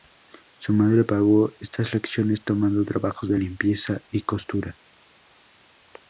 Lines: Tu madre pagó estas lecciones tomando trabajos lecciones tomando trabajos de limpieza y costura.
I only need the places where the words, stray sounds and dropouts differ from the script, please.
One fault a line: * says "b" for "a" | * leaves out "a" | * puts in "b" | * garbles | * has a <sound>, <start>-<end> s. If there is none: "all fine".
* says "Su" for "Tu"
* leaves out "lecciones tomando trabajos"